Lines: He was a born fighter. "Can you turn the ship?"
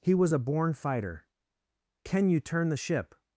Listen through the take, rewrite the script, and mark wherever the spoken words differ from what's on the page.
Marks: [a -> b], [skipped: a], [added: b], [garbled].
He was a born fighter. "Can you turn the ship?"